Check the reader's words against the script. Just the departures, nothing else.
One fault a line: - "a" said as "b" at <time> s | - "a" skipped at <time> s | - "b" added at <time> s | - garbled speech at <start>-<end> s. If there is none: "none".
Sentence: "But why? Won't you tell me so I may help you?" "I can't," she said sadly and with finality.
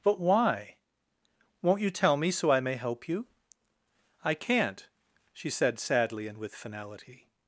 none